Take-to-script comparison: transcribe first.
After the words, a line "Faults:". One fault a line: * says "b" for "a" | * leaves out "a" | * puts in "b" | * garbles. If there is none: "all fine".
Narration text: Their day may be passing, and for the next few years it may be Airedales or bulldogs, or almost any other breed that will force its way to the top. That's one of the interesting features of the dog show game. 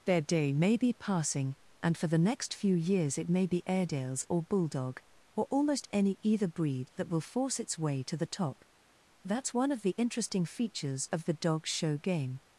Their day may be passing, and for the next few years it may be Airedales or bulldog, or almost any either breed that will force its way to the top. That's one of the interesting features of the dog show game.
Faults:
* says "bulldog" for "bulldogs"
* says "either" for "other"